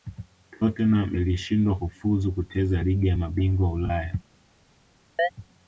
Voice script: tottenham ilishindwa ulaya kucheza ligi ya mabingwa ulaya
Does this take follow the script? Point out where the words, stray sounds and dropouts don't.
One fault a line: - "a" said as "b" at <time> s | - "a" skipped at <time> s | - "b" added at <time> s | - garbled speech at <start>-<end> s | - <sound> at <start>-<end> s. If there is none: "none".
- "ulaya" said as "kufuzu" at 1.8 s
- chirp at 5.2-5.3 s